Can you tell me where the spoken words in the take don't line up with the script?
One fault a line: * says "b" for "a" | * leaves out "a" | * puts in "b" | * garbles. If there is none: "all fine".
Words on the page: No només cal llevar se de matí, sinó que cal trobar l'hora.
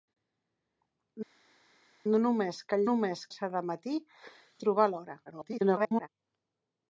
* says "només" for "llevar"
* leaves out "sinó que cal"
* garbles